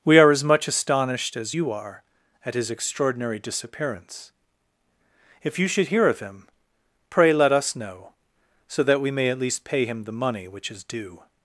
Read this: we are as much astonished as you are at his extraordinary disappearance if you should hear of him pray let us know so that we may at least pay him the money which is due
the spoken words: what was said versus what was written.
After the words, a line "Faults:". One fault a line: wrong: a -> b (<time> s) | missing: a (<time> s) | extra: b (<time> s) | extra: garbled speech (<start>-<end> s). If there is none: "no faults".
we are as much astonished as you are at his extraordinary disappearance if you should hear of him pray let us know so that we may at least pay him the money which is due
Faults:
no faults